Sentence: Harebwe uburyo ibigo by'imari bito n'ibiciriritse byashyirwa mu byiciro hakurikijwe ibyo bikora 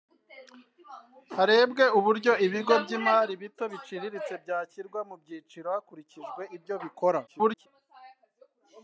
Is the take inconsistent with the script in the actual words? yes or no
yes